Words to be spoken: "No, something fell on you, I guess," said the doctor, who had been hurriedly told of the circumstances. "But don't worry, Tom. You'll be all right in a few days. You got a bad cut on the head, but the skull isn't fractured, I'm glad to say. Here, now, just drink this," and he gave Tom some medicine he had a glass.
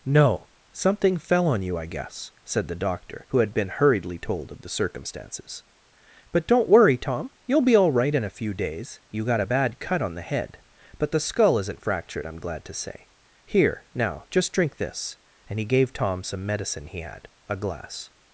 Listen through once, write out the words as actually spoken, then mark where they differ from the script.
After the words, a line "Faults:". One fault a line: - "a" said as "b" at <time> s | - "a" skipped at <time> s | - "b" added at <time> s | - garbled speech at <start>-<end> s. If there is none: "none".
"No, something fell on you, I guess," said the doctor, who had been hurriedly told of the circumstances. "But don't worry, Tom. You'll be all right in a few days. You got a bad cut on the head, but the skull isn't fractured, I'm glad to say. Here, now, just drink this," and he gave Tom some medicine he had a glass.
Faults:
none